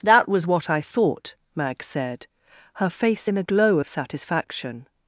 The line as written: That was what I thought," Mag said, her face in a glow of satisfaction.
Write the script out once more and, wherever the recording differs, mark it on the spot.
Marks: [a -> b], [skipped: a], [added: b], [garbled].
That was what I thought," Mag said, her face in a glow of satisfaction.